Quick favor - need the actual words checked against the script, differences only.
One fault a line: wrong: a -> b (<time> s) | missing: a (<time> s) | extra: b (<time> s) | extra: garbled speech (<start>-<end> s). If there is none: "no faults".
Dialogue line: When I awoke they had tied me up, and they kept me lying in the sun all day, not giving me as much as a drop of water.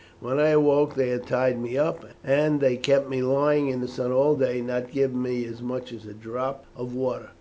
no faults